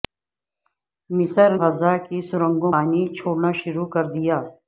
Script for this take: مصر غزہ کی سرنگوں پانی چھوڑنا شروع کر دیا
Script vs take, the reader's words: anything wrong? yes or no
no